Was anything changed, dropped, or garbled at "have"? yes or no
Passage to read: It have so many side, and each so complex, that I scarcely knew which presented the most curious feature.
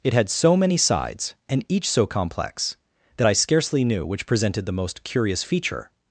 yes